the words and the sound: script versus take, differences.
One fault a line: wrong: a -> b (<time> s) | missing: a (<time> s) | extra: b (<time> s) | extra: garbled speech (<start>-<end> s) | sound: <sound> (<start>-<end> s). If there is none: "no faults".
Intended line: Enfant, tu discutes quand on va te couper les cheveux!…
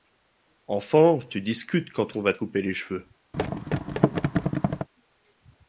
sound: thud (3.3-4.9 s)